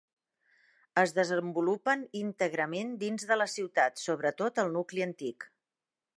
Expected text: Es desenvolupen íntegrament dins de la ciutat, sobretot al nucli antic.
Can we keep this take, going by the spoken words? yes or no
yes